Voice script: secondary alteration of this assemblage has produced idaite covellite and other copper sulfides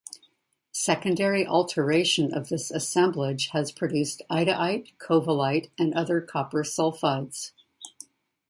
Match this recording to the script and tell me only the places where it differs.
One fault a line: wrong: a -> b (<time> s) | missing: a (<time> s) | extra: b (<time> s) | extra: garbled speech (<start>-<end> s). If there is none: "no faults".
no faults